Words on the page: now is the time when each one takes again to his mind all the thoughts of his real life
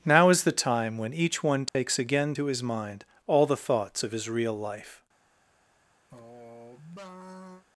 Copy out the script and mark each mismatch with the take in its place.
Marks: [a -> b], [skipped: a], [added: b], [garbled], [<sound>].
now is the time when each one takes [dropout] again to his mind all the thoughts of his real life [sigh]